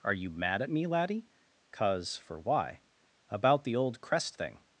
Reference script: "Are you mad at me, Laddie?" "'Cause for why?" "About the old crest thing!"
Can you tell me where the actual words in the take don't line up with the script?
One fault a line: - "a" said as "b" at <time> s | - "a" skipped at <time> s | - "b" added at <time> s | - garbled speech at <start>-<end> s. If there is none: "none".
none